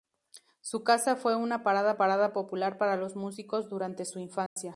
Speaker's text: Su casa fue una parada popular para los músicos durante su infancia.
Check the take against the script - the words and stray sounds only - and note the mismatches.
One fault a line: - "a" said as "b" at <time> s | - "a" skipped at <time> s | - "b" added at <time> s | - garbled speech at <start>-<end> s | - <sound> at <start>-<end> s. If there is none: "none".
- "parada" added at 2.0 s
- dropout at 4.5-4.6 s